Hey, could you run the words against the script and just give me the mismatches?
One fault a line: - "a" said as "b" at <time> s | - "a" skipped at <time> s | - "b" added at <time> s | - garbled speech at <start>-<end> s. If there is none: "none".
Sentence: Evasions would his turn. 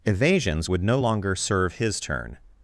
- "no longer serve" added at 0.8 s